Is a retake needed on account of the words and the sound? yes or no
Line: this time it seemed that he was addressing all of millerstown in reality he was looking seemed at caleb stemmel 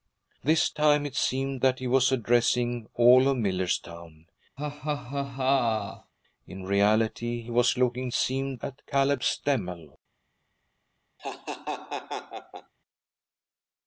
yes